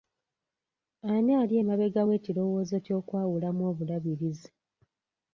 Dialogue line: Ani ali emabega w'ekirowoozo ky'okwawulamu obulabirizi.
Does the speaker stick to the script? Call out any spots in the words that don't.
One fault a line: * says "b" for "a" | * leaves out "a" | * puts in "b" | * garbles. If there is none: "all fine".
all fine